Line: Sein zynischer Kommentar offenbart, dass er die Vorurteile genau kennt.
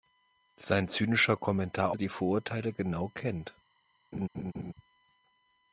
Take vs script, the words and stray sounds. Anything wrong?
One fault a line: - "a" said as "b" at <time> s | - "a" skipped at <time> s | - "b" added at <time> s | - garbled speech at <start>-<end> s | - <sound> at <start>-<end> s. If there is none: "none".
- "offenbart dass" skipped at 1.9 s
- laugh at 4.1-4.7 s